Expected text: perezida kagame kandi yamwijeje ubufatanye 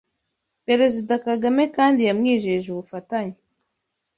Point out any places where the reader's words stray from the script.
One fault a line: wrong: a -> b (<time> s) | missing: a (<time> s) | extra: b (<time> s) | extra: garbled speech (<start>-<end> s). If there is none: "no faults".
no faults